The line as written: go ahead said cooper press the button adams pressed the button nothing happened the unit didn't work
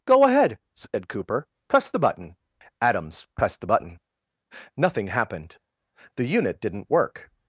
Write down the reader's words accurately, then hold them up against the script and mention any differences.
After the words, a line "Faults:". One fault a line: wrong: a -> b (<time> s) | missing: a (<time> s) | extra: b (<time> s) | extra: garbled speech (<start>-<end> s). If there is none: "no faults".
go ahead said cooper press the button adams pressed the button nothing happened the unit didn't work
Faults:
no faults